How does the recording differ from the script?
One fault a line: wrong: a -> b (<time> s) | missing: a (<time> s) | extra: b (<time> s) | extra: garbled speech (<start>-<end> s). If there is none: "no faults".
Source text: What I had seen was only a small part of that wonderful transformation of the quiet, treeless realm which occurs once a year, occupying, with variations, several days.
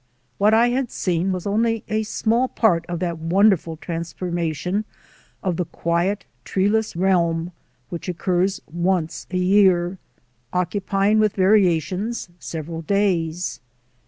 no faults